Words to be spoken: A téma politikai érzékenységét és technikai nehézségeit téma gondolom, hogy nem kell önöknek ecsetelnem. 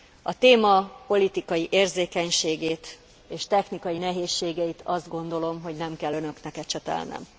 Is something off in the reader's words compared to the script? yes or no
yes